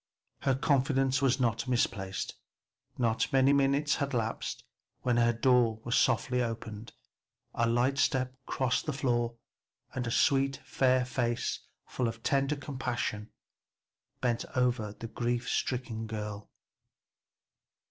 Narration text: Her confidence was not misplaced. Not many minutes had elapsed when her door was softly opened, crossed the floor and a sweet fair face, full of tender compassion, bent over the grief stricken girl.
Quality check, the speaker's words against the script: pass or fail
fail